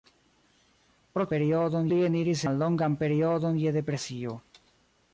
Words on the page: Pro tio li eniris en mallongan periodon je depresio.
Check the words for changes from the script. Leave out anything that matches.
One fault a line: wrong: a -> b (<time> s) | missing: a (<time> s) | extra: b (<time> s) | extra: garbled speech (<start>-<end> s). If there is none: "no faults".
wrong: tio -> periodon (1.3 s)
missing: en (2.5 s)